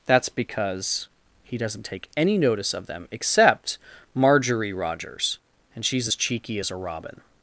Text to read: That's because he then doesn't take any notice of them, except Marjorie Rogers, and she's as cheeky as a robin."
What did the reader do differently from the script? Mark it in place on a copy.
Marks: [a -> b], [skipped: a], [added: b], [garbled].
That's because he [skipped: then] doesn't take any notice of them, except Marjorie Rogers, and she's as cheeky as a robin."